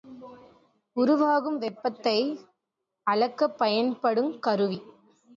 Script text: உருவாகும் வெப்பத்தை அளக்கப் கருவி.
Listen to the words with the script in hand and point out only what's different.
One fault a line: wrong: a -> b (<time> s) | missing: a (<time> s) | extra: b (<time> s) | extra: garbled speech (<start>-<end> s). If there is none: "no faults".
extra: பயன்படுங் (3.6 s)